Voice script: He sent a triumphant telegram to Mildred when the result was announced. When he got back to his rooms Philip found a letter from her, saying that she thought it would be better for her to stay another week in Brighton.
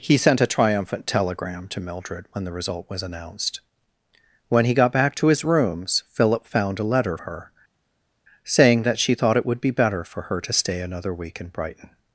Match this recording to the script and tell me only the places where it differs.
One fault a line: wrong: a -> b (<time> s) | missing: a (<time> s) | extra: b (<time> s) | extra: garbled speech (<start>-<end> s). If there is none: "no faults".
missing: from (7.2 s)